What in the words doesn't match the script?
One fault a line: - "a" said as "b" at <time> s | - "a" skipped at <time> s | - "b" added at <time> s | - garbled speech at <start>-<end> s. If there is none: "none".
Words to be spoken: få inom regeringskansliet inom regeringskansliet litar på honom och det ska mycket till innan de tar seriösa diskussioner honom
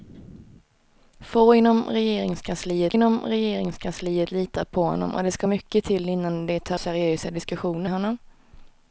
none